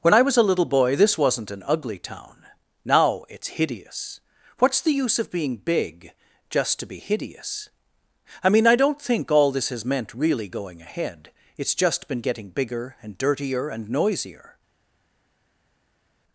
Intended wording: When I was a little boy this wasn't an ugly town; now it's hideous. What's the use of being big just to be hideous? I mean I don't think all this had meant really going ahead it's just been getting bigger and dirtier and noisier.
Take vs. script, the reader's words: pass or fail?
fail